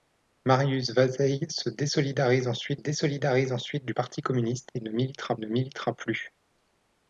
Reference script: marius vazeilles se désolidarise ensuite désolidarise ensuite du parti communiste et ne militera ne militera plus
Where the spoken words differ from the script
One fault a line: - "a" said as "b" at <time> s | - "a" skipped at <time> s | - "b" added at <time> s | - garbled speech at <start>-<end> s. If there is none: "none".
none